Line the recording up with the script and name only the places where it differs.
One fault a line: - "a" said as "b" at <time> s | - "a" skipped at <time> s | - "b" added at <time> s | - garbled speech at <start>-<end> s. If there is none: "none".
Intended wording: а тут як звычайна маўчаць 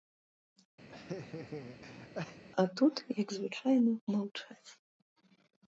none